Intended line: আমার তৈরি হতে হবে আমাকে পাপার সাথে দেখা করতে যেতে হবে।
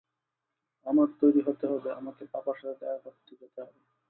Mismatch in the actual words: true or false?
false